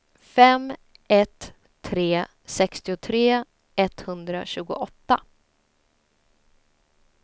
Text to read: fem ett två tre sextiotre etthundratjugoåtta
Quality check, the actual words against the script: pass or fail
fail